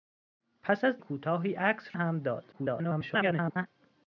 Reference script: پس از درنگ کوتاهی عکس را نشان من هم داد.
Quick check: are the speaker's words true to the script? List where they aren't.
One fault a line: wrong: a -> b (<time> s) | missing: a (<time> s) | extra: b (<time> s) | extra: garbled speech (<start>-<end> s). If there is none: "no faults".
missing: درنگ (1.0 s)
missing: را نشان من (2.0 s)
extra: garbled speech (2.5-3.7 s)